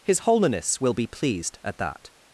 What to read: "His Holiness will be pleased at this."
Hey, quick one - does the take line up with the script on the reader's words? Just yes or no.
no